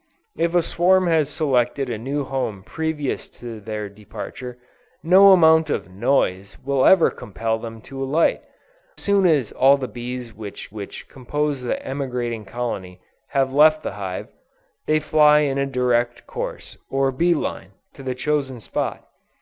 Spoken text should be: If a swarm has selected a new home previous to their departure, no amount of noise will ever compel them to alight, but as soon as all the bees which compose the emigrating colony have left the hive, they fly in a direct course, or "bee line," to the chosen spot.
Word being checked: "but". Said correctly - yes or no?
no